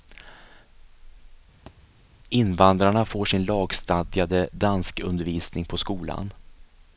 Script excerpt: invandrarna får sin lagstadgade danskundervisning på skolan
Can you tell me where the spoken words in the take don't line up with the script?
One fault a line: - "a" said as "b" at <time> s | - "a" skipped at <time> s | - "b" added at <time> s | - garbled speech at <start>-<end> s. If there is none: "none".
none